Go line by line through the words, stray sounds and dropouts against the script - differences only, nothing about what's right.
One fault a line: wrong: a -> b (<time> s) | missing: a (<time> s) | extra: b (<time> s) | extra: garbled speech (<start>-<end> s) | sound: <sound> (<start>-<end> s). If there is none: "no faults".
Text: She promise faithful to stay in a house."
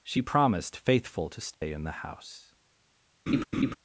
wrong: promise -> promised (0.2 s)
sound: dropout (1.5-1.6 s)
wrong: a -> the (1.8 s)
sound: laugh (3.3-3.7 s)